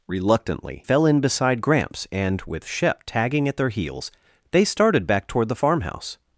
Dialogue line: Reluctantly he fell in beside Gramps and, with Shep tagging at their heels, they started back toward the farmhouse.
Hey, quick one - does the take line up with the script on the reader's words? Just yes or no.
no